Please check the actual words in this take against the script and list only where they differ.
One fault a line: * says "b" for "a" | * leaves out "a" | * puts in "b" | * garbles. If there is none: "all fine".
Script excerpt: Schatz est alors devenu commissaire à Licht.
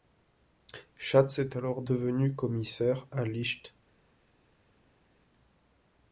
all fine